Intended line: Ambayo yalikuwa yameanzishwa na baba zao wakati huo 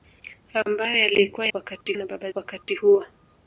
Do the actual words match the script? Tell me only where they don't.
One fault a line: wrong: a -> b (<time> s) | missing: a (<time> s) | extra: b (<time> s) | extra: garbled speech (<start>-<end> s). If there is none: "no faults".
wrong: yameanzishwa -> wakati (1.5 s)
missing: zao (2.3 s)